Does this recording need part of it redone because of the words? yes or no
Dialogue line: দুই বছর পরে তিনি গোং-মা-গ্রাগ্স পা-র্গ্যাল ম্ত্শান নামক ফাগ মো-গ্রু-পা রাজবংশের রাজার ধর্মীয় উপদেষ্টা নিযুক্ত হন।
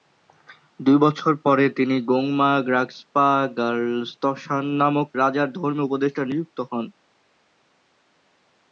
yes